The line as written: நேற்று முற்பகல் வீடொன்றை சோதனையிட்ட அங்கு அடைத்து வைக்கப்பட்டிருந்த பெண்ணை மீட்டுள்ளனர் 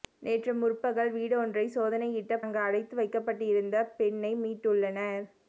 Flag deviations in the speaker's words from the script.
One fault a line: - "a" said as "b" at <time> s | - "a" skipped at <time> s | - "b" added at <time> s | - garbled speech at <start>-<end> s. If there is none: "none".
none